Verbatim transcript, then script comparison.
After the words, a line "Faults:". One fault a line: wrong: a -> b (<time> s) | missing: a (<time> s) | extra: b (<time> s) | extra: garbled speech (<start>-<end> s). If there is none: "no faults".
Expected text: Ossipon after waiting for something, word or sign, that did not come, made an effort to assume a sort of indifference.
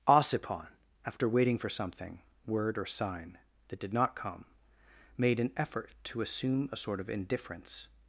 Ossipon after waiting for something, word or sign, that did not come, made an effort to assume a sort of indifference.
Faults:
no faults